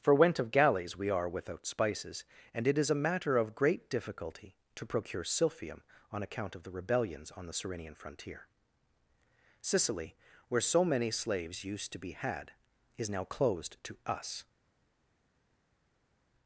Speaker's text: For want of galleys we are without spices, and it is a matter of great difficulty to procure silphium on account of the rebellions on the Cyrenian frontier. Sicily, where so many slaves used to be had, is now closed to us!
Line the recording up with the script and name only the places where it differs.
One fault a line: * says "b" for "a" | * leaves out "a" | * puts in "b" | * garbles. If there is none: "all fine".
* says "went" for "want"